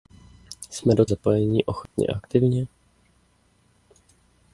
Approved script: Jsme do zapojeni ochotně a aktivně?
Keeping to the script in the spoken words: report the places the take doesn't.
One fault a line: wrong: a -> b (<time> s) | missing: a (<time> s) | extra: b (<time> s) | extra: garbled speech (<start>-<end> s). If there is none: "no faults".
no faults